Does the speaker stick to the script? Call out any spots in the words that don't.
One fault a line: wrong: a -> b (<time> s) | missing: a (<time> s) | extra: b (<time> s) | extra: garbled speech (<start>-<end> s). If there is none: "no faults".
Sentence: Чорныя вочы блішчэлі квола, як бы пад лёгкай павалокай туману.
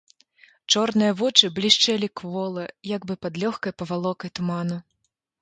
no faults